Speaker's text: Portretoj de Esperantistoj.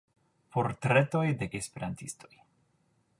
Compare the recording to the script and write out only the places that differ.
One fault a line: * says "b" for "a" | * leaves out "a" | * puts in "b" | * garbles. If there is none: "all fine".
all fine